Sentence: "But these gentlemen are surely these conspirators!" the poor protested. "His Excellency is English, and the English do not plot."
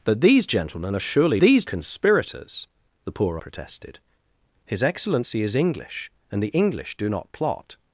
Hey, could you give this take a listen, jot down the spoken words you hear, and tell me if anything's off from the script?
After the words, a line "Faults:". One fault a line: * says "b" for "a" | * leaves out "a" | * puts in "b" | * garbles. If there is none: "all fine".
"But these gentlemen are surely these conspirators!" the poor protested. "His Excellency is English, and the English do not plot."
Faults:
all fine